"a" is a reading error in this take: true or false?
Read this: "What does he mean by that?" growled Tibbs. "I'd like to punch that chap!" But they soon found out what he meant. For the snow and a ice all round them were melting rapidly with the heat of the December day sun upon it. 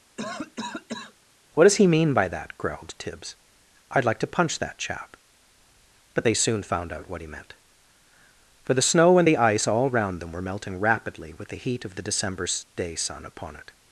true